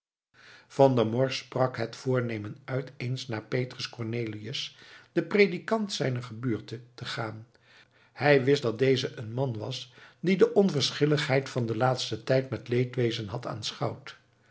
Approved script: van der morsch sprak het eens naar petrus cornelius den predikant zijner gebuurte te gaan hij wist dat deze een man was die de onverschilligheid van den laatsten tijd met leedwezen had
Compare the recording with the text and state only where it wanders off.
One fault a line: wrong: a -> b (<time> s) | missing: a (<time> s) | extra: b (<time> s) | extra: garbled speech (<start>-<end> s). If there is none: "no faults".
extra: voornemen uit (1.9 s)